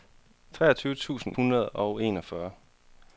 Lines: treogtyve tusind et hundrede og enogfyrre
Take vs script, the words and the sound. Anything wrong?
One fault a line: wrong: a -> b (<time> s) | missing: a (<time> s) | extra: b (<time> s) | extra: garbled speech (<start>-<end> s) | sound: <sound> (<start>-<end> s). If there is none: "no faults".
missing: et (1.3 s)